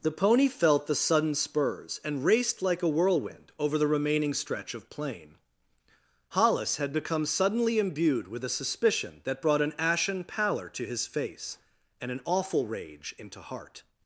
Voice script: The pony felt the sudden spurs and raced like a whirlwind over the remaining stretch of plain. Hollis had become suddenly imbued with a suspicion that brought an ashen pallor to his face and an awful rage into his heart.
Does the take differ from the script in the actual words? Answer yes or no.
yes